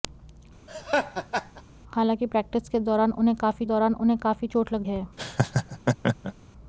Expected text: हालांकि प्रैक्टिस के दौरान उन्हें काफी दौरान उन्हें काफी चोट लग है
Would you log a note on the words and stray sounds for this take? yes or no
yes